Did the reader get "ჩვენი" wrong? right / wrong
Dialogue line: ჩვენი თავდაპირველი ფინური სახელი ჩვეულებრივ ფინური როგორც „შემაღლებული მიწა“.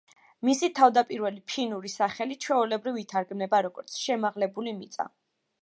wrong